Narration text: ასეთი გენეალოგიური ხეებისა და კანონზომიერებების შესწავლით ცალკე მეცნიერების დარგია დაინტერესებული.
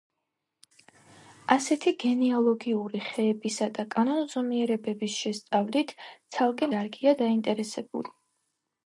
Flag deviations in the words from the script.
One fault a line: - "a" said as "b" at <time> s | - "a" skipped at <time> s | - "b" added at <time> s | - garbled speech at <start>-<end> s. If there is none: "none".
- "მეცნიერების" skipped at 6.7 s